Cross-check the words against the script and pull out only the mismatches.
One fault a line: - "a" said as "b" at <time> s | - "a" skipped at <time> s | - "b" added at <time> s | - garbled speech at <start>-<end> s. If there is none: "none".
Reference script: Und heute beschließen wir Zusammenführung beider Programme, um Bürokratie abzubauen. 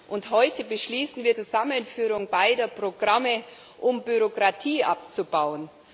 none